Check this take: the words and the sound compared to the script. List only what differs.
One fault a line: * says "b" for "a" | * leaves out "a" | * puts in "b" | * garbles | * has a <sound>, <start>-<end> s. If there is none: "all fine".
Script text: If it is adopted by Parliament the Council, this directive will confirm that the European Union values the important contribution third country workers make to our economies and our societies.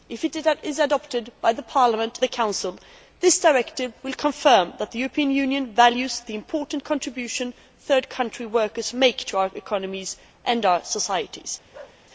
* has a bark, 11.7-12.0 s